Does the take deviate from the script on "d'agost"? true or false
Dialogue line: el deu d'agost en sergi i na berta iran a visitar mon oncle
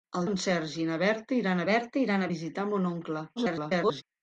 true